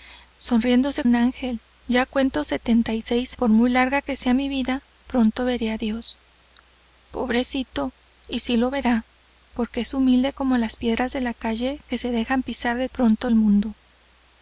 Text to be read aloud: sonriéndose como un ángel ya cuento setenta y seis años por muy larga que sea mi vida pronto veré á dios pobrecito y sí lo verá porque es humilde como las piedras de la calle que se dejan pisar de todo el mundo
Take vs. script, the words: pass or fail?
fail